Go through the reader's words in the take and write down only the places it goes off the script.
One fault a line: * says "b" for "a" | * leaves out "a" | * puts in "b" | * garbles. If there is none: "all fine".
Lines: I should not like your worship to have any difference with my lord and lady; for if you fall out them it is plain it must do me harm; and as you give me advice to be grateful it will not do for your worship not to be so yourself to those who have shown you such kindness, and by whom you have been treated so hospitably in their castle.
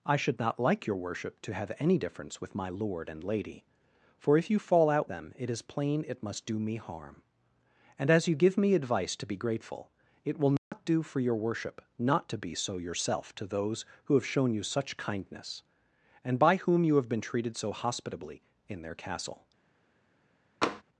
all fine